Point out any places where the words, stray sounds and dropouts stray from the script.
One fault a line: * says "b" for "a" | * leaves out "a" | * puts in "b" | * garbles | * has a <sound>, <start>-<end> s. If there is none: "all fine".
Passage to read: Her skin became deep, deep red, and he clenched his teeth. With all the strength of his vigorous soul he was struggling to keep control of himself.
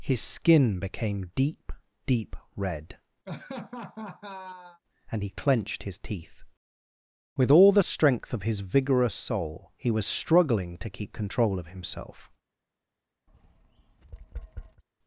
* says "His" for "Her"
* has a laugh, 3.3-4.8 s
* has a tap, 13.3-14.8 s